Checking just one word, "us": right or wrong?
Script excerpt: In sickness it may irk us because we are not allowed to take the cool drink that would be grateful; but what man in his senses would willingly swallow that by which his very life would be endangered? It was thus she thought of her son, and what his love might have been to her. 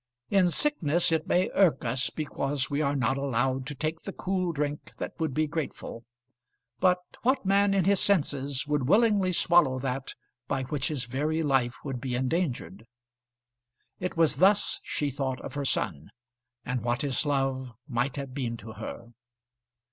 right